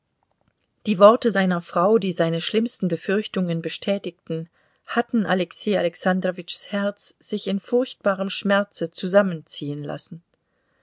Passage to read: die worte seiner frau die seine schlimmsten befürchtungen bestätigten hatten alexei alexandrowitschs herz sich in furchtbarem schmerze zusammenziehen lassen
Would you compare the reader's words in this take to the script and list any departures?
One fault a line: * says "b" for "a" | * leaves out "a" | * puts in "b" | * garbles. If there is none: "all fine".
all fine